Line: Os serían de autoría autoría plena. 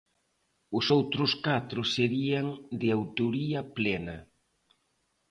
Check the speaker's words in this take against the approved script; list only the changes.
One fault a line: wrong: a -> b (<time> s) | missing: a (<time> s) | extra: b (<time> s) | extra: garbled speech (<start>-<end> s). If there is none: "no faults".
extra: outros catro (1.0 s)
missing: autoría (3.6 s)